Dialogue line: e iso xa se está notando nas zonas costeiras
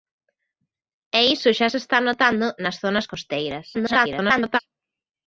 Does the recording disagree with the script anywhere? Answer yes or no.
yes